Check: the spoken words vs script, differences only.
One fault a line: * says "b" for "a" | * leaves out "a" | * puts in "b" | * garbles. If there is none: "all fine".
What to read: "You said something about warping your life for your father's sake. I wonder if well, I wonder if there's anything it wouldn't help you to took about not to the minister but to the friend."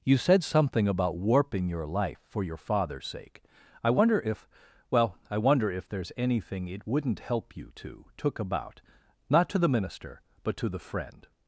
all fine